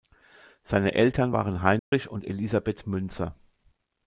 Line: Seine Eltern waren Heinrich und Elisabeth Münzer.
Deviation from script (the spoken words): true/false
false